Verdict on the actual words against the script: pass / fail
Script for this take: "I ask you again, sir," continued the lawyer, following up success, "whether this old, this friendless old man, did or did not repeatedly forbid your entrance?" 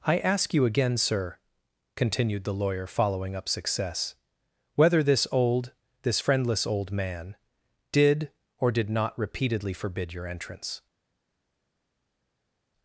pass